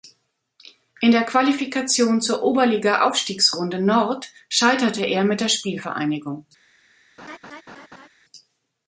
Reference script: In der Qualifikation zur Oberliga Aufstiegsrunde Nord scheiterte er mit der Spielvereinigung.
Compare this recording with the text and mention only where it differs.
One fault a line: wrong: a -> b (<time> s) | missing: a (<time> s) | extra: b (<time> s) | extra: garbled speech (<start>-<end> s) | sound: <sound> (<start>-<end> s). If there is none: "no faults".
sound: laugh (7.2-8.1 s)